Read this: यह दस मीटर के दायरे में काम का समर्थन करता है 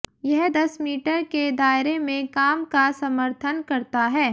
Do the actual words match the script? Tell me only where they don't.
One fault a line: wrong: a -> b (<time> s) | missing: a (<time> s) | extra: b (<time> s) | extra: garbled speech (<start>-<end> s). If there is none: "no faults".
no faults